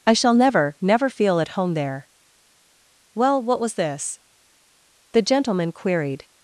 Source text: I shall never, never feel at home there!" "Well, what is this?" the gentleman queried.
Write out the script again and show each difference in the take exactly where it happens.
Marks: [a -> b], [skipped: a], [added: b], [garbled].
I shall never, never feel at home there!" "Well, what [is -> was] this?" the gentleman queried.